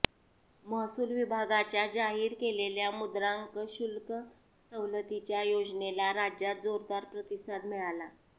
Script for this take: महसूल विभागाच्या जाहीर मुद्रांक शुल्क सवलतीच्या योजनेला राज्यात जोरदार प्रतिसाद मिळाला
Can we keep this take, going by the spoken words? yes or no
no